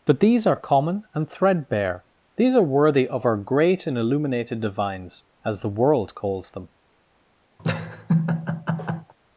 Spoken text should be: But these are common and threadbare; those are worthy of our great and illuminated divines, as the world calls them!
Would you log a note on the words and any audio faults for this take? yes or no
yes